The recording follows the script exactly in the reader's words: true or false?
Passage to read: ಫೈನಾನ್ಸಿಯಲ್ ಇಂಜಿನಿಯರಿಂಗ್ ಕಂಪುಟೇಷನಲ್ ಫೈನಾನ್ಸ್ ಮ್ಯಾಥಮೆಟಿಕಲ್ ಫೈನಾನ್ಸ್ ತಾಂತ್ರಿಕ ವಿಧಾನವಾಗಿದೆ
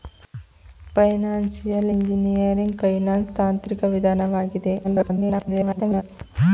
false